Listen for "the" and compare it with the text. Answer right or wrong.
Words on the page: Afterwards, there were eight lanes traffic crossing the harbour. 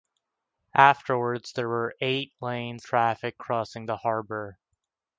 right